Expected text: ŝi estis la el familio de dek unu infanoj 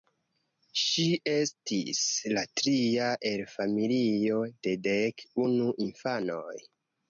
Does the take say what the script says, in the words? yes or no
no